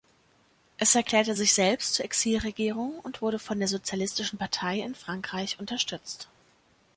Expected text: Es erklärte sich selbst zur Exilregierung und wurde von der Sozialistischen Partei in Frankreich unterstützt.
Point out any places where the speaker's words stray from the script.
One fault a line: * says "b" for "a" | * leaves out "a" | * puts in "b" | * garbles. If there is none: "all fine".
all fine